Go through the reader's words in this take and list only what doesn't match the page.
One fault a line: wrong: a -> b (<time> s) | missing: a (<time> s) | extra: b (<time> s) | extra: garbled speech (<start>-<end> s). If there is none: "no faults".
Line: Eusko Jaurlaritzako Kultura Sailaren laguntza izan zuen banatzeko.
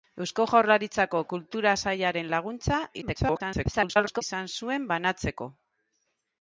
extra: garbled speech (3.0-4.2 s)